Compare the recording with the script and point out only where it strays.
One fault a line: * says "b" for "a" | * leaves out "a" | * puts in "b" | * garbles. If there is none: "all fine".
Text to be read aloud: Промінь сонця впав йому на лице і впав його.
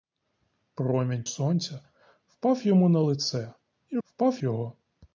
all fine